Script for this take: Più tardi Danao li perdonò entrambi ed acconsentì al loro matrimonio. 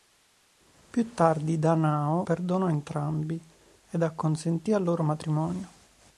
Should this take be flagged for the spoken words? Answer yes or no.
yes